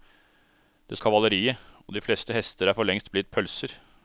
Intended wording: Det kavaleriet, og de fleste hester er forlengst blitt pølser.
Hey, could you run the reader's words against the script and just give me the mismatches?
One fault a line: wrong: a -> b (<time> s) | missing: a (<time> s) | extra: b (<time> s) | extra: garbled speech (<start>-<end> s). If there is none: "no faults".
no faults